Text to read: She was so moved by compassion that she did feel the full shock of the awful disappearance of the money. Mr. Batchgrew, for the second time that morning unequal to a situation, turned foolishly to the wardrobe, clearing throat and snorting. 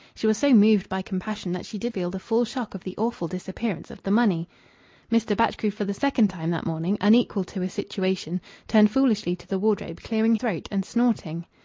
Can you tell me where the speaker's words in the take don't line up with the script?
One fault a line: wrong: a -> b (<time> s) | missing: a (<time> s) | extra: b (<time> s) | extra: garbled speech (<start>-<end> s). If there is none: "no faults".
no faults